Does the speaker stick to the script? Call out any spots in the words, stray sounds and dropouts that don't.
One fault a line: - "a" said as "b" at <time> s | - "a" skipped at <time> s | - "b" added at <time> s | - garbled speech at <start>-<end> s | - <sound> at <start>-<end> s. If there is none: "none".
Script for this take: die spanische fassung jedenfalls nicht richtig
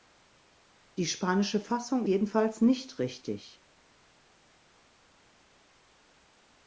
none